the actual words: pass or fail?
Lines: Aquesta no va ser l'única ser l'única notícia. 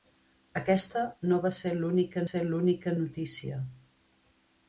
pass